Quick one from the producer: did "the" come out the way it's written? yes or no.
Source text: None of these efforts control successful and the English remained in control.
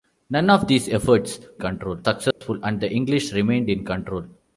yes